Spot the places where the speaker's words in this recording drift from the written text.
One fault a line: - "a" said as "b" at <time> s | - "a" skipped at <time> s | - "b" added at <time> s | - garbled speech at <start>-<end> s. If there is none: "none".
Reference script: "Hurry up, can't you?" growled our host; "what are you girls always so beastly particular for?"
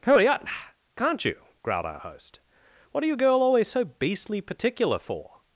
- "girls" said as "girl" at 3.1 s